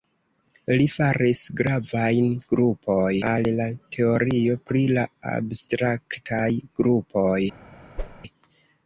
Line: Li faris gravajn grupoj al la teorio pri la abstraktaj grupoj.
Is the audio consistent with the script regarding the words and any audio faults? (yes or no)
no